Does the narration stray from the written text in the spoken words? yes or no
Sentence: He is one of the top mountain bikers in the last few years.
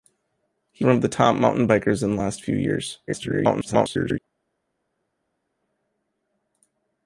yes